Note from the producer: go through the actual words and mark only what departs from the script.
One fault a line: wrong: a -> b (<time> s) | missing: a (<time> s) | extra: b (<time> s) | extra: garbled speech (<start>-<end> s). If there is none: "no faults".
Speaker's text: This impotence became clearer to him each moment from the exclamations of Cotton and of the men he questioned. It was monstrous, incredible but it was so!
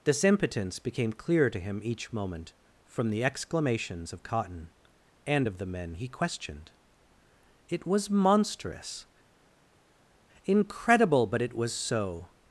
no faults